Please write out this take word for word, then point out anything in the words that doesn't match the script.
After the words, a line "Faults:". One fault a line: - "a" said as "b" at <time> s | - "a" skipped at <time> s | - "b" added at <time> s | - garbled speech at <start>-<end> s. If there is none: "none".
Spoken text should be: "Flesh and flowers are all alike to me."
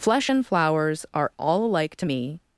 "Flesh and flowers are all alike to me."
Faults:
none